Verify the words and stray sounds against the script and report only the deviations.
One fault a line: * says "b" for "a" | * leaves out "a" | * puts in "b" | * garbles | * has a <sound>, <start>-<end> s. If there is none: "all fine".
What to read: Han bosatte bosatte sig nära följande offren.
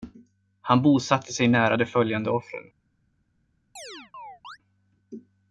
* leaves out "bosatte"
* puts in "de"
* has a chirp, 3.8-4.6 s